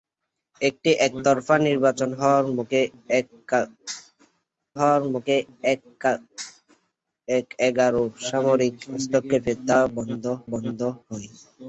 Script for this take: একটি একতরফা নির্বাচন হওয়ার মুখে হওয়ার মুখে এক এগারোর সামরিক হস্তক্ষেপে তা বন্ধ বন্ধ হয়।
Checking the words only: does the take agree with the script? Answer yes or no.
yes